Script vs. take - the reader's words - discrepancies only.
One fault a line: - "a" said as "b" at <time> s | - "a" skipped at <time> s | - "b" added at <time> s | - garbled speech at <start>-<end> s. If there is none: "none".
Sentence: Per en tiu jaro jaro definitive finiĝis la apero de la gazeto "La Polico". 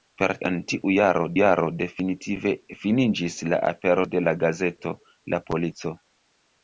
none